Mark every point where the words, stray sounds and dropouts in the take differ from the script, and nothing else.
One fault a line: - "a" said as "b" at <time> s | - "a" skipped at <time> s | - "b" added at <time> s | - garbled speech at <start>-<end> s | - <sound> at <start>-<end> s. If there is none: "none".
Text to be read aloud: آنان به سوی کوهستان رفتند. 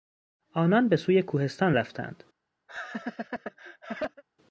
- laugh at 2.7-4.2 s